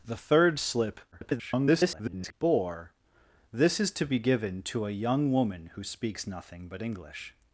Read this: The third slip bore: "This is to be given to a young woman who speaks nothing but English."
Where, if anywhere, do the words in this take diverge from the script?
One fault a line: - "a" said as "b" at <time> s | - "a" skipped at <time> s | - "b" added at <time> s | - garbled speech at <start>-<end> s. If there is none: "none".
- garbled speech at 1.1-2.3 s